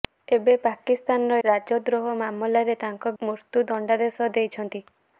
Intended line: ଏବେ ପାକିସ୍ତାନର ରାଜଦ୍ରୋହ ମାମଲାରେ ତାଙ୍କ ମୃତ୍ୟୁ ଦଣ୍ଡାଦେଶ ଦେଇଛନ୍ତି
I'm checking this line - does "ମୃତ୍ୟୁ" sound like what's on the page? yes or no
yes